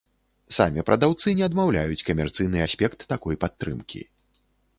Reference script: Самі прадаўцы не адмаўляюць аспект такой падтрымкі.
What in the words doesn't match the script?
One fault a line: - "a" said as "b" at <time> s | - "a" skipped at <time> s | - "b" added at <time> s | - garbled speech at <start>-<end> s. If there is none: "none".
- "камерцыйны" added at 2.1 s